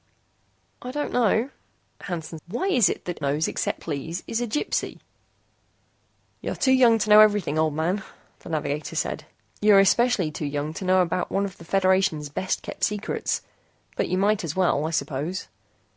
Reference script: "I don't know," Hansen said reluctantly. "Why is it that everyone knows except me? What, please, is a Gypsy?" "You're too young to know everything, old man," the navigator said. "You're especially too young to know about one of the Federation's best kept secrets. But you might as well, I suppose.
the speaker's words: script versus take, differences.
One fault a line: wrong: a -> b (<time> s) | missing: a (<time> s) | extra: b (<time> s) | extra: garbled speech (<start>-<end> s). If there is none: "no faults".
missing: said reluctantly (2.4 s)
missing: everyone (3.2 s)
missing: me What (3.8 s)